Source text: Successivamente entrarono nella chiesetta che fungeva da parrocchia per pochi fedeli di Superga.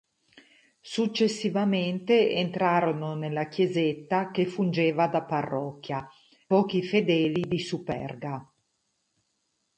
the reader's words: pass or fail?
fail